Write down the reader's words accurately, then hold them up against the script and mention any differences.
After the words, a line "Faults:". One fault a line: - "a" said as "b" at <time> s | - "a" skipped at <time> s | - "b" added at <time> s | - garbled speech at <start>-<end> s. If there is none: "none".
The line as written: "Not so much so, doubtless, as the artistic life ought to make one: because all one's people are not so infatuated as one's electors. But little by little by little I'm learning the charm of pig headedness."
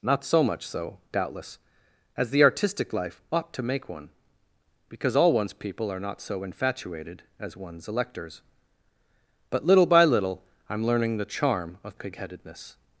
"Not so much so, doubtless, as the artistic life ought to make one: because all one's people are not so infatuated as one's electors. But little by little I'm learning the charm of pig headedness."
Faults:
- "by little" skipped at 10.4 s